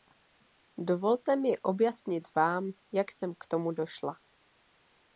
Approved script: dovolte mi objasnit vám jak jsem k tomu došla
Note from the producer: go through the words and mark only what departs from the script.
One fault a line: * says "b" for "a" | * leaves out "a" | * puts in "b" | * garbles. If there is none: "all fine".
all fine